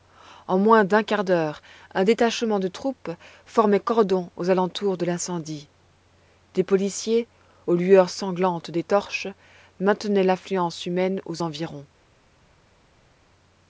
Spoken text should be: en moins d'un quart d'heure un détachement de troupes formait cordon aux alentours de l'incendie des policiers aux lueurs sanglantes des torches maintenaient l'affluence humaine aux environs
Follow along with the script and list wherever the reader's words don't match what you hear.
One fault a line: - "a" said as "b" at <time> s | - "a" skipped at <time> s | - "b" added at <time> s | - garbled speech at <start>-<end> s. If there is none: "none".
none